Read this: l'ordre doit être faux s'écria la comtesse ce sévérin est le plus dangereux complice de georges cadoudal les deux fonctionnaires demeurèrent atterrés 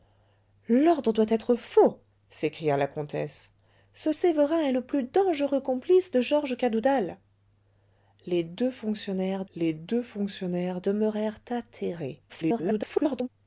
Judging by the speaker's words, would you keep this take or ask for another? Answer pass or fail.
fail